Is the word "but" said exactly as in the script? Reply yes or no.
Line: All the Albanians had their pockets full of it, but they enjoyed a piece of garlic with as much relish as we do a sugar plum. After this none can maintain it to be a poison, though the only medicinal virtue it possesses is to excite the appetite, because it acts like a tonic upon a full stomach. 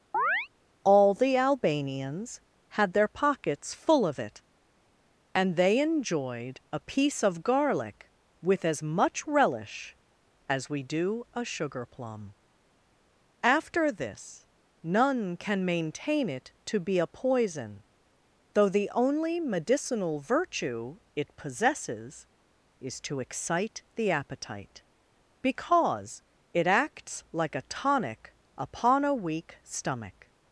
no